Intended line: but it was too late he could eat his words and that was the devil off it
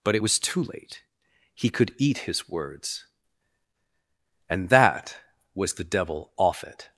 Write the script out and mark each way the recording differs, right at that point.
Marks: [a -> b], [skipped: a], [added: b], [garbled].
but it was too late he could eat his words and that was the devil off it